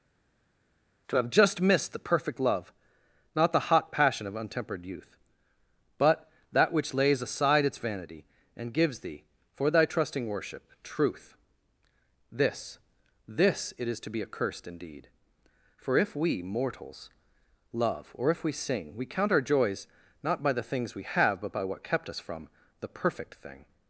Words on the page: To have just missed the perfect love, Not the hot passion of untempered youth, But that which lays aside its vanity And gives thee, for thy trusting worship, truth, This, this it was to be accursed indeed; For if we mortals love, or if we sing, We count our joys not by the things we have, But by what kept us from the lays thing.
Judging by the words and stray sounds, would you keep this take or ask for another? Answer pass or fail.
fail